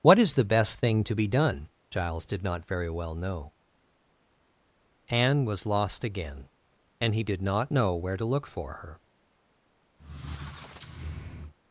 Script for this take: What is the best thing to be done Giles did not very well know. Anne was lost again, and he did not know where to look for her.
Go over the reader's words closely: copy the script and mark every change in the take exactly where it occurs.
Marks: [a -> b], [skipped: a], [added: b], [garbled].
What is the best thing to be done Giles did not very well know. Anne was lost again, and he did not know where to look for her.